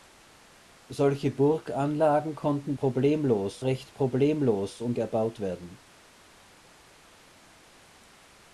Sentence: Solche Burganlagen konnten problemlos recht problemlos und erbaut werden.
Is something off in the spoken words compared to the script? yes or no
no